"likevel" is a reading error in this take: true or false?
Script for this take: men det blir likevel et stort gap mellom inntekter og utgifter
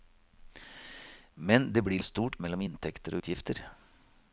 true